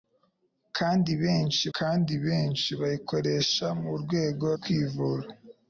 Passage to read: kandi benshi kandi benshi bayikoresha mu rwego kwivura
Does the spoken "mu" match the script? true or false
true